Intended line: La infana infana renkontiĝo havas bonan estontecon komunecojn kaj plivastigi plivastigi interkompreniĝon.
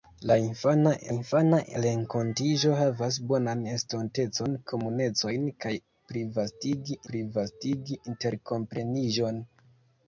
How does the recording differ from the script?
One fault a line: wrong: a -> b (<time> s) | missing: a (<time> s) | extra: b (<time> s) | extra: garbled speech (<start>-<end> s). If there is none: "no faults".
no faults